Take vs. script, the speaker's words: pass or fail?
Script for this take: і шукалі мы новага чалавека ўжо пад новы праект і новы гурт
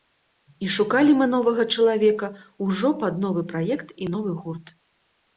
pass